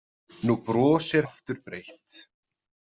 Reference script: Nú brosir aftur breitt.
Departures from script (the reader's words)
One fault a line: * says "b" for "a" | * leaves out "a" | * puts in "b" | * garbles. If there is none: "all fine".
all fine